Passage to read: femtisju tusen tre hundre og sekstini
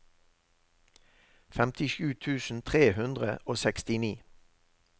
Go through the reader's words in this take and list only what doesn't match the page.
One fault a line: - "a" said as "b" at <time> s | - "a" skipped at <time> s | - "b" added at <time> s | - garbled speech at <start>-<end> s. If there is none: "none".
none